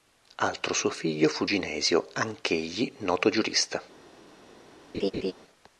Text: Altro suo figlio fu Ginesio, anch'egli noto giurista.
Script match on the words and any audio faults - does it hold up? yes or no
no